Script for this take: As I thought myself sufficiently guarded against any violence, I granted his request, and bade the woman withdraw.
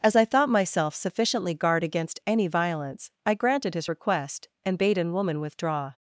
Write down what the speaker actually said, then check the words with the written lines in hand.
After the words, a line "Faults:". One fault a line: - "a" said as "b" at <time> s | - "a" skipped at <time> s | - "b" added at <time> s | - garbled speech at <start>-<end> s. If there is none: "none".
As I thought myself sufficiently guard against any violence, I granted his request, and bade an woman withdraw.
Faults:
- "guarded" said as "guard" at 1.5 s
- "the" said as "an" at 5.0 s